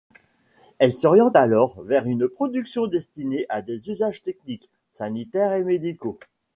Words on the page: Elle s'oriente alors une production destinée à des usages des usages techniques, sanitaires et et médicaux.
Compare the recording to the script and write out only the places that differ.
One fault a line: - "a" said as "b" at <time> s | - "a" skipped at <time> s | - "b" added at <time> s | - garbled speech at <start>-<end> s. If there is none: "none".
- "vers" added at 1.8 s
- "des usages" skipped at 4.2 s
- "et" skipped at 5.6 s